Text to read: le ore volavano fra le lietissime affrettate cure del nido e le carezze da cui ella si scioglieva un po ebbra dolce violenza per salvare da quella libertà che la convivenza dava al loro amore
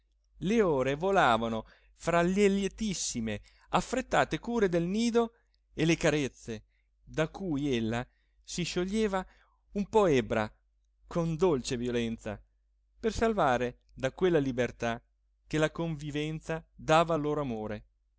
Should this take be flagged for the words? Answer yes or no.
yes